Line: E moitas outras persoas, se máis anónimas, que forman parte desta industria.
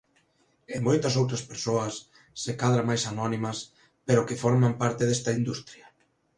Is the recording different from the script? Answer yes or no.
yes